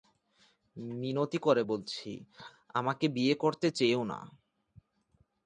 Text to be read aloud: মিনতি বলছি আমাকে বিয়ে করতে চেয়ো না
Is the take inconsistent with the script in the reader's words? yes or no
yes